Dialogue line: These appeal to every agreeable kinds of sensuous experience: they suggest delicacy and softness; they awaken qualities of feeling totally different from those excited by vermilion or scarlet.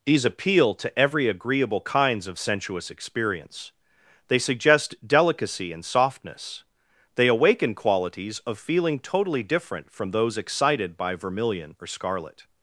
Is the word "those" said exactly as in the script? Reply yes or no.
yes